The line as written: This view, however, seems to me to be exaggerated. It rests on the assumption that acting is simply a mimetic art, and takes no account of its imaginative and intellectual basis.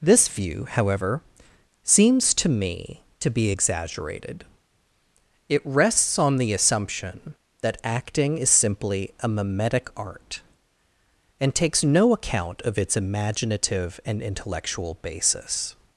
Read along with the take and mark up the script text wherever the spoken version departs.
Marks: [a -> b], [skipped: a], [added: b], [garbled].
This view, however, seems to me to be exaggerated. It rests on the assumption that acting is simply a mimetic art, and takes no account of its imaginative and intellectual basis.